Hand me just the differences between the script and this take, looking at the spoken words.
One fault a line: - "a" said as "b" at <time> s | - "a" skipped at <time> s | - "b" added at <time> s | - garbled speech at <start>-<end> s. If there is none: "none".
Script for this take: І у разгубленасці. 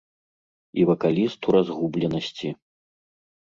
- "вакаліст" added at 0.9 s